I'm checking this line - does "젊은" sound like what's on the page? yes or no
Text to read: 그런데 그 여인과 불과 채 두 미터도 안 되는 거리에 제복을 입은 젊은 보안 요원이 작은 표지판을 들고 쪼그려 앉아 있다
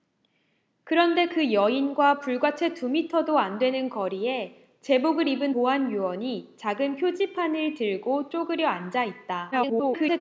no